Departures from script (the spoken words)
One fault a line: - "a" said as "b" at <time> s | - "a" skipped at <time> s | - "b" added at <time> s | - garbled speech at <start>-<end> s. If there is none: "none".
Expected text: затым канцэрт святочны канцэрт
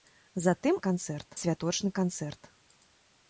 none